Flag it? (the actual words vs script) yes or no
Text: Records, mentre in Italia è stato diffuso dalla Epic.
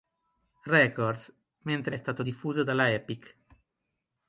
yes